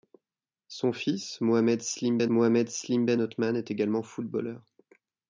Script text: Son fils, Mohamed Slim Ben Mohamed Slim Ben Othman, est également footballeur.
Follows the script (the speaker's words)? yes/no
yes